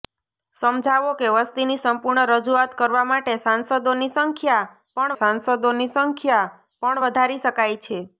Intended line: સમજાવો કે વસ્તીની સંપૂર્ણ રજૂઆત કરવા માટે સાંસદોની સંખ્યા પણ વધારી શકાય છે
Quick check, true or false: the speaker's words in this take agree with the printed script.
false